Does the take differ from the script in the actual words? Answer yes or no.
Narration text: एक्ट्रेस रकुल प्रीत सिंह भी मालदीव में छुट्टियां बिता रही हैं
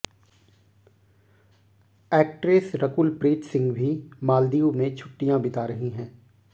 no